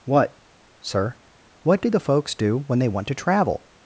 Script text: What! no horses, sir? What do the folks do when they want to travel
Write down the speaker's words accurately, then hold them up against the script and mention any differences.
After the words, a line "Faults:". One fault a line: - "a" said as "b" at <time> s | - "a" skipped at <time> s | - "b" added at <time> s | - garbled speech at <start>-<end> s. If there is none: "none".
What! sir? What do the folks do when they want to travel
Faults:
- "no horses" skipped at 0.4 s